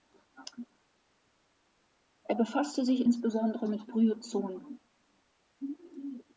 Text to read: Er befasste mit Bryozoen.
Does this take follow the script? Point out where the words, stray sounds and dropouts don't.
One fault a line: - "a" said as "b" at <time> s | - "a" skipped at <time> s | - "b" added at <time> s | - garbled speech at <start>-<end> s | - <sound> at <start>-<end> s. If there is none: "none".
- "sich insbesondere" added at 2.9 s